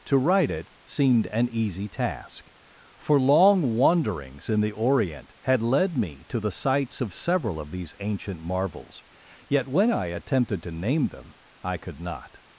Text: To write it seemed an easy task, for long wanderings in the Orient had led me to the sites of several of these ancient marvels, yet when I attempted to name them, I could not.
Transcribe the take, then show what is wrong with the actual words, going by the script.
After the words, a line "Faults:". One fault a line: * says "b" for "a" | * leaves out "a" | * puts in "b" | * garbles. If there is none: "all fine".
To write it seemed an easy task, for long wanderings in the Orient had led me to the sites of several of these ancient marvels, yet when I attempted to name them, I could not.
Faults:
all fine